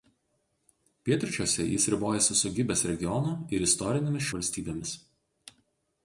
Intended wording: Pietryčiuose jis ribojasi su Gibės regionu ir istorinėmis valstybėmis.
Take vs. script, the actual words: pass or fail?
pass